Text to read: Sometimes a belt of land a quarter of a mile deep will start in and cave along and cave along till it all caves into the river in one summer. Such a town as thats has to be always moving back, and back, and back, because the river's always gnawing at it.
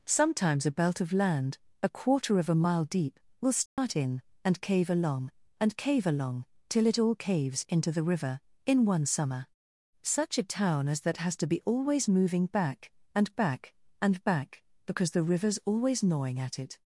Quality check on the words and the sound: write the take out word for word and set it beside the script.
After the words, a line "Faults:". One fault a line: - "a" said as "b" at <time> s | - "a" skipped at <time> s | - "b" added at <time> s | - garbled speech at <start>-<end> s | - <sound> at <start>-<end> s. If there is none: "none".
Sometimes a belt of land a quarter of a mile deep will start in and cave along and cave along till it all caves into the river in one summer. Such a town as that has to be always moving back, and back, and back, because the river's always gnawing at it.
Faults:
- dropout at 3.7-3.8 s
- "thats" said as "that" at 11.0 s